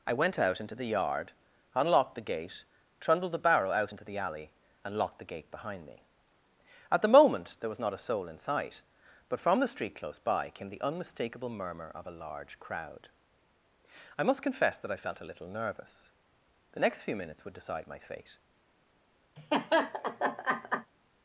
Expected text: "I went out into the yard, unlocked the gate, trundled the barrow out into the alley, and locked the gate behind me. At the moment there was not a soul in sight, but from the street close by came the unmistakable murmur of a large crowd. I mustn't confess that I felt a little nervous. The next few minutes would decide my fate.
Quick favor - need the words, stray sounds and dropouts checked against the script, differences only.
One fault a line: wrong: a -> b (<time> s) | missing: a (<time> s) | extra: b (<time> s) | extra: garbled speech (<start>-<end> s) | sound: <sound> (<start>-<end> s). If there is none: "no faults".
wrong: mustn't -> must (14.2 s)
sound: laugh (19.4-20.9 s)